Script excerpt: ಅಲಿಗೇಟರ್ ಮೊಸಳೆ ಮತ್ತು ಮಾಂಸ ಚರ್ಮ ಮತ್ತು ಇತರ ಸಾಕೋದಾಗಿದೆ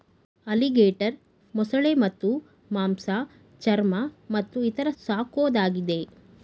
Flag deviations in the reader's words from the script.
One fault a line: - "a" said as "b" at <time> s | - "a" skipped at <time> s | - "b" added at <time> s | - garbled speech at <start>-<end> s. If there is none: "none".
none